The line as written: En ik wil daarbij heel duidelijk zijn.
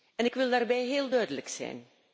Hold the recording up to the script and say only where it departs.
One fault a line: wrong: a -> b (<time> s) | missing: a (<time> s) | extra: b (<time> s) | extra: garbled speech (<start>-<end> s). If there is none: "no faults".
no faults